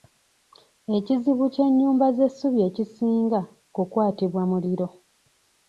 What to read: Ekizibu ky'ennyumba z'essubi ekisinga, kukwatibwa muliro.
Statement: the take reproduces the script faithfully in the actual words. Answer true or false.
true